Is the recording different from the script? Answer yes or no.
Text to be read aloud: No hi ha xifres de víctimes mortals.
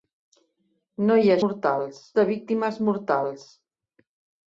yes